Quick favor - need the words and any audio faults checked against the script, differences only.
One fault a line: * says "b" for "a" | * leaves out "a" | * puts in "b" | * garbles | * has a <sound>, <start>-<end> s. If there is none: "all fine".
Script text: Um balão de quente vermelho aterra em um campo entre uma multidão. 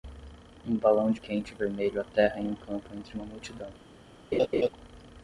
* has a laugh, 4.3-4.7 s